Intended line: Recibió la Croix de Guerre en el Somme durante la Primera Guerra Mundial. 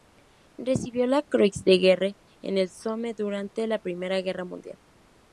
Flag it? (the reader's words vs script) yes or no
no